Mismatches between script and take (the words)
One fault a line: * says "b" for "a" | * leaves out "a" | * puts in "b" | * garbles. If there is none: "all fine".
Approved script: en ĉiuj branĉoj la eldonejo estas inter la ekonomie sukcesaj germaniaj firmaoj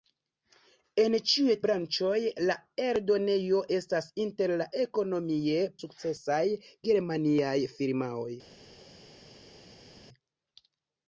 all fine